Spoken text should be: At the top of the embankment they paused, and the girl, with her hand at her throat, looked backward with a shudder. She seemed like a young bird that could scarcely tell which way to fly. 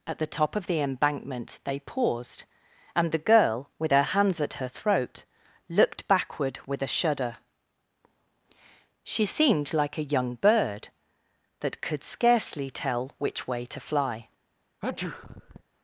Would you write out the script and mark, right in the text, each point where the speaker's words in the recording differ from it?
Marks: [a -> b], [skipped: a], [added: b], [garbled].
At the top of the embankment they paused, and the girl, with her [hand -> hands] at her throat, looked backward with a shudder. She seemed like a young bird that could scarcely tell which way to fly.